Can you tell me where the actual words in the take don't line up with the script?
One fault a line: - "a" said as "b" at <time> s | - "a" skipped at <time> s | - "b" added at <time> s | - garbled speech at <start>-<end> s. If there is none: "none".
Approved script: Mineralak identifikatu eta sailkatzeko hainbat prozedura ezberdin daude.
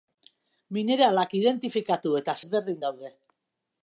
- "sailkatzeko hainbat prozedura" skipped at 2.4 s